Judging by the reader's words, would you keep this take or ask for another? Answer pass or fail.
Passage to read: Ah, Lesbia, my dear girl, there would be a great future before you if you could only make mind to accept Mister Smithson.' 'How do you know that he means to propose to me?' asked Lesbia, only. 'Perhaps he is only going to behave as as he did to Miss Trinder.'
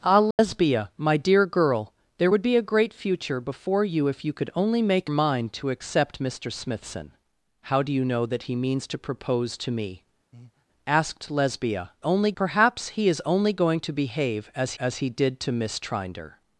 pass